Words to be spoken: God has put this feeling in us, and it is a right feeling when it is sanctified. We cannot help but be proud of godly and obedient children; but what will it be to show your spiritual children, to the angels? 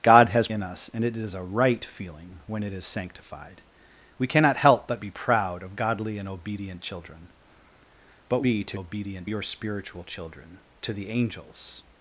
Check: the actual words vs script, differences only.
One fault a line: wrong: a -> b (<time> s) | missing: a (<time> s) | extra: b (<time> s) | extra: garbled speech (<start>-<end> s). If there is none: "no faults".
missing: put this feeling (0.5 s)
missing: what will it (8.4 s)
wrong: show -> obedient (8.7 s)